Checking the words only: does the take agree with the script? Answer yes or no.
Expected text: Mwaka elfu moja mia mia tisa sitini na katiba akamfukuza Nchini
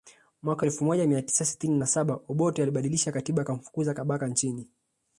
no